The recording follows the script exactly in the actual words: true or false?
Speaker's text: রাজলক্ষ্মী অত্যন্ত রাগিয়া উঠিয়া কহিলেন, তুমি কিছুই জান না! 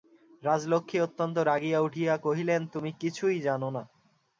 true